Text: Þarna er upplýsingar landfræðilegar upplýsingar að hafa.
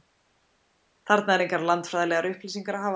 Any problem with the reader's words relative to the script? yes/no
yes